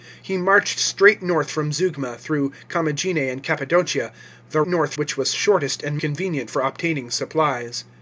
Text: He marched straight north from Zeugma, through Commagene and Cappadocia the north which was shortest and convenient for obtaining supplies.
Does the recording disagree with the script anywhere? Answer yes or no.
no